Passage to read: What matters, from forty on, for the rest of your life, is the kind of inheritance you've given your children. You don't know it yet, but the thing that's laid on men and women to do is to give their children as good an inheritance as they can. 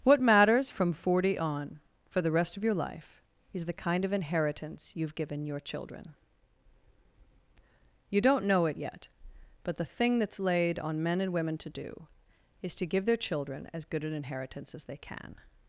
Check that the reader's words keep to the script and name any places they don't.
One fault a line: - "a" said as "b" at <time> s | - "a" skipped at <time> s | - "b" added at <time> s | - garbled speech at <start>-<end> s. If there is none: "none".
none